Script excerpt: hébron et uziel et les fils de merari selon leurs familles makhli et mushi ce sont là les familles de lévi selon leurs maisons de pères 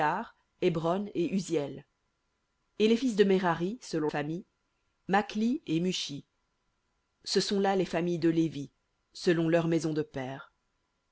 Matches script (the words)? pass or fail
fail